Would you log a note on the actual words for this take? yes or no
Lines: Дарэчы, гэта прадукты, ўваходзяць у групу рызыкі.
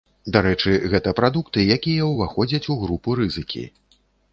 yes